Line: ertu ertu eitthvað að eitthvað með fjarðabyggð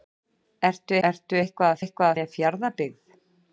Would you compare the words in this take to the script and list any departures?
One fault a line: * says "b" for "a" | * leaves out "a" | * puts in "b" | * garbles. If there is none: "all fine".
all fine